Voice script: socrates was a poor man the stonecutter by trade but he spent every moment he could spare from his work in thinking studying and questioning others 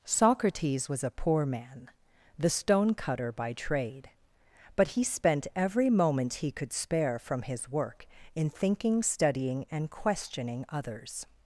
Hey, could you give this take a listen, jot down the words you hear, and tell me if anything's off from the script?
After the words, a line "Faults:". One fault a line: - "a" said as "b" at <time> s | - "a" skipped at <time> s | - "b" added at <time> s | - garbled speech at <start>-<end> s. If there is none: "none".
socrates was a poor man the stonecutter by trade but he spent every moment he could spare from his work in thinking studying and questioning others
Faults:
none